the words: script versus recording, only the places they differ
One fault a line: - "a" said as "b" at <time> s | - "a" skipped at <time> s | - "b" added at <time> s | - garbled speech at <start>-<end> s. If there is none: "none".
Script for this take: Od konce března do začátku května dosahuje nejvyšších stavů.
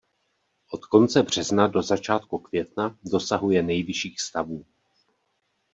none